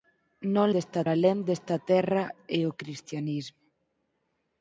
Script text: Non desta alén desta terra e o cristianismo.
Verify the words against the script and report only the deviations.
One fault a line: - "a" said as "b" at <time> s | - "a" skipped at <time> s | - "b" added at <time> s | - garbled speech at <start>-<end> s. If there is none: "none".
none